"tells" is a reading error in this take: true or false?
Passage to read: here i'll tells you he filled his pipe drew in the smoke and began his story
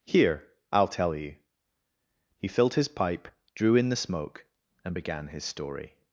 true